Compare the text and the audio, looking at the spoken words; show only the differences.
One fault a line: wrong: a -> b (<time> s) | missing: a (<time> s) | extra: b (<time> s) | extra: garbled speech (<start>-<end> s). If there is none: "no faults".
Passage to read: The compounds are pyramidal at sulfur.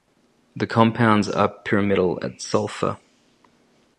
no faults